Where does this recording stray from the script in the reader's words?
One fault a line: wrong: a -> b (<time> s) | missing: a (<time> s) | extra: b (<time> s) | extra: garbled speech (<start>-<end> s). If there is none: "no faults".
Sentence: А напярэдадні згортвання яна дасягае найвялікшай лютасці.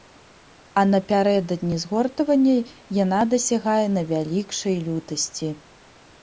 no faults